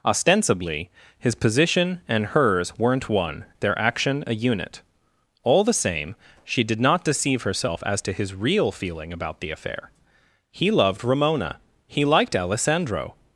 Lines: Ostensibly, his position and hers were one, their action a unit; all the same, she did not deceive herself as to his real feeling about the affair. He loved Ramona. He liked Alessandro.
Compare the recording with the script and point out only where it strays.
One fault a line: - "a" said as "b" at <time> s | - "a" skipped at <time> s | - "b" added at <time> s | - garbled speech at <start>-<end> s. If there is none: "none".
- "were" said as "weren't" at 2.8 s